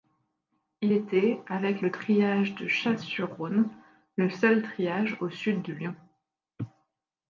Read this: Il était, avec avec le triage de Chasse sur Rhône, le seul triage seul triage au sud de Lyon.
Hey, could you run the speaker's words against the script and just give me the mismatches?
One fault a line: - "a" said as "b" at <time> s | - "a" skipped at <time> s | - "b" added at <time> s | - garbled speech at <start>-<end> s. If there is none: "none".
- "avec" skipped at 1.8 s
- "seul triage" skipped at 5.2 s